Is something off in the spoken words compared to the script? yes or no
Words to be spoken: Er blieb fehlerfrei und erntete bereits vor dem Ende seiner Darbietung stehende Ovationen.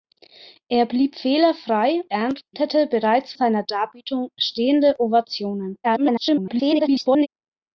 yes